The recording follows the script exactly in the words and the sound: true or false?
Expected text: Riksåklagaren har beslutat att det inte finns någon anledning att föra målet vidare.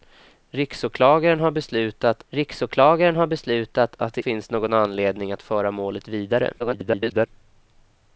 false